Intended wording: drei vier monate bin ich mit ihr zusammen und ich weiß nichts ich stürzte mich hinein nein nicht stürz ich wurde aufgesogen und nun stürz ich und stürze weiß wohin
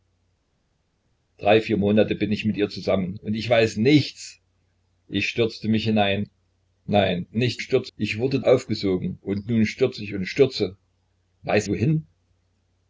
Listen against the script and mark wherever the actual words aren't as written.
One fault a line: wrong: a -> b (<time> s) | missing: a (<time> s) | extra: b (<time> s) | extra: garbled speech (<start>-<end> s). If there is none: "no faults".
no faults